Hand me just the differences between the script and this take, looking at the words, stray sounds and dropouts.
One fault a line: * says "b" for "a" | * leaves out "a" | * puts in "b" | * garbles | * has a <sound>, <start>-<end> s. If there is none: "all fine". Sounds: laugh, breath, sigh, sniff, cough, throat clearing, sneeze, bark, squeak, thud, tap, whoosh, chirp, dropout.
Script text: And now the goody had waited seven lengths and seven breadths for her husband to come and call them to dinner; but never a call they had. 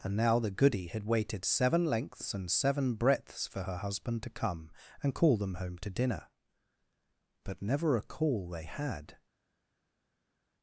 * puts in "home"